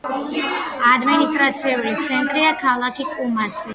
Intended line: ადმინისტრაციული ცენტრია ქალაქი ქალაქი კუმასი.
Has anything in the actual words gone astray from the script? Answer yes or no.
yes